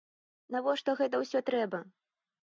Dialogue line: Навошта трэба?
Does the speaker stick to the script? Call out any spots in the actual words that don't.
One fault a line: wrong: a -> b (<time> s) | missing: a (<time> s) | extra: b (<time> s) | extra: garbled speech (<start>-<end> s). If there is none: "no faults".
extra: гэта ўсё (1.0 s)